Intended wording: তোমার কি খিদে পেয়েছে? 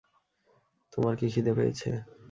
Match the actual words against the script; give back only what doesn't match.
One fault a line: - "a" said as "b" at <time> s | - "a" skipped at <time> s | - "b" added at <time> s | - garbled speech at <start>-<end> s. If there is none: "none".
none